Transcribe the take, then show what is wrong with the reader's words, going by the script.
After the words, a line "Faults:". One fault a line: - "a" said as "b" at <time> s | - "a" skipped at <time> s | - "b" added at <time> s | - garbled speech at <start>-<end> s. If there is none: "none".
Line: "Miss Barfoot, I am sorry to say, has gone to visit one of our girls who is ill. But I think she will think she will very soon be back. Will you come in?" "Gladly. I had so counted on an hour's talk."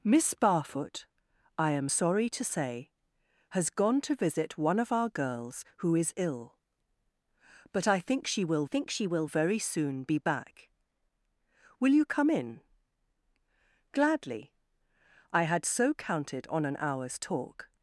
"Miss Barfoot, I am sorry to say, has gone to visit one of our girls who is ill. But I think she will think she will very soon be back. Will you come in?" "Gladly. I had so counted on an hour's talk."
Faults:
none